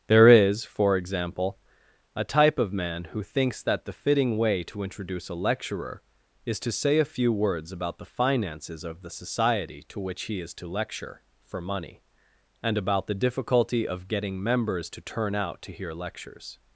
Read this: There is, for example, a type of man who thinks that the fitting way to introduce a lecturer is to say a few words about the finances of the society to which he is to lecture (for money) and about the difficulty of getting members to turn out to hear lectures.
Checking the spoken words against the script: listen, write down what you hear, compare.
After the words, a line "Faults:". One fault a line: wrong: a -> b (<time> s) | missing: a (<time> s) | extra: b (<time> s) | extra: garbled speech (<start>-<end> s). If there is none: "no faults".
There is, for example, a type of man who thinks that the fitting way to introduce a lecturer is to say a few words about the finances of the society to which he is to lecture (for money) and about the difficulty of getting members to turn out to hear lectures.
Faults:
no faults